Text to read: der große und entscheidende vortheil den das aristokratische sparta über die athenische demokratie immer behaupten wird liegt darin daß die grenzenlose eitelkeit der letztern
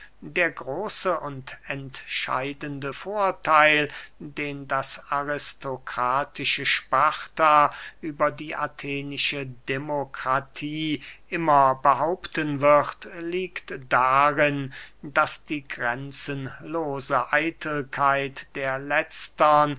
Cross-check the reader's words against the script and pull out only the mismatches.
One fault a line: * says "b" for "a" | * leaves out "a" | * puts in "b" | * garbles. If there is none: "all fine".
all fine